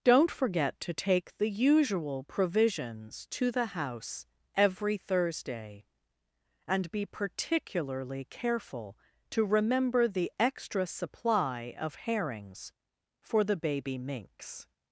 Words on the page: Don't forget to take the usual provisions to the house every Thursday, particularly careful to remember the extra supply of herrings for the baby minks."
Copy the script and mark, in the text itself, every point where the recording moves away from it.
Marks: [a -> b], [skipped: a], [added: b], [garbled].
Don't forget to take the usual provisions to the house every Thursday, [added: and be] particularly careful to remember the extra supply of herrings for the baby minks."